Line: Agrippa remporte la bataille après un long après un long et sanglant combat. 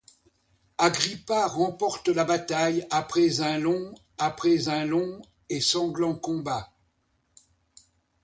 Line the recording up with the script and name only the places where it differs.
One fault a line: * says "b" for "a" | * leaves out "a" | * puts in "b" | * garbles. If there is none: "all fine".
all fine